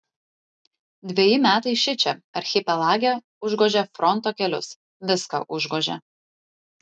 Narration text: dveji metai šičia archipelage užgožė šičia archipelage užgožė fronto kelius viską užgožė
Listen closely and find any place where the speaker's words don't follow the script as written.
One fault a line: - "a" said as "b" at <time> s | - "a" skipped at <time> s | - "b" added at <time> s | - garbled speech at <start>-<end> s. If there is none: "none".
- "šičia archipelage užgožė" skipped at 3.8 s